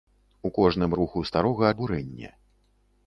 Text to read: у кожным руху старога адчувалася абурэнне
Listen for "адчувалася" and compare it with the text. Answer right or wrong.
wrong